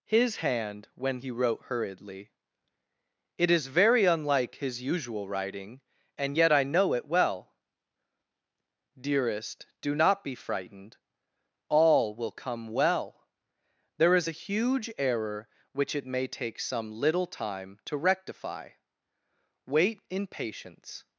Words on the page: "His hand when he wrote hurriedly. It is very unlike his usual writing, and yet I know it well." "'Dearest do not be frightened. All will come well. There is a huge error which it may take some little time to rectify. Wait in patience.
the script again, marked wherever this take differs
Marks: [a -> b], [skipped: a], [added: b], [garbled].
"His hand when he wrote hurriedly. It is very unlike his usual writing, and yet I know it well." "'Dearest do not be frightened. All will come well. There is a huge error which it may take some little time to rectify. Wait in patience.